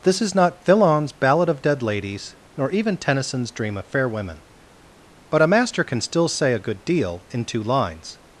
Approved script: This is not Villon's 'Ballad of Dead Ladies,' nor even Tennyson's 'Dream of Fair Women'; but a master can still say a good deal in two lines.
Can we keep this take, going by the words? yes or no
yes